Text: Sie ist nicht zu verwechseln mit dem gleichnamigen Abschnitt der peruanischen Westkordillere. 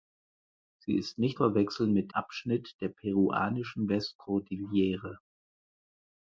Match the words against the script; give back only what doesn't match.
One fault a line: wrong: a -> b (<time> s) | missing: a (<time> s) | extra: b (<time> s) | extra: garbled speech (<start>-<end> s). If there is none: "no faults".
missing: zu (1.4 s)
missing: dem gleichnamigen (2.1 s)